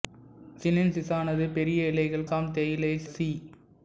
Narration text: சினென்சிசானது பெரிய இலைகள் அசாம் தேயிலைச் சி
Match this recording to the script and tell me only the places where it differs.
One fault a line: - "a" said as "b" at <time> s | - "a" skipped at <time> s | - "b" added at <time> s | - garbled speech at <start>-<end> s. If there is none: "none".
none